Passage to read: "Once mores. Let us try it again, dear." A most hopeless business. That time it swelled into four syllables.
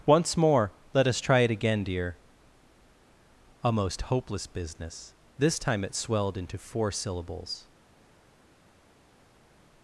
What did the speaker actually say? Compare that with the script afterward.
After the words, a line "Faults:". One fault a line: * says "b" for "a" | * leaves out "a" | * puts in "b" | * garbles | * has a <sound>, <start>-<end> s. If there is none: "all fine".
"Once more. Let us try it again, dear." A most hopeless business. This time it swelled into four syllables.
Faults:
* says "more" for "mores"
* says "This" for "That"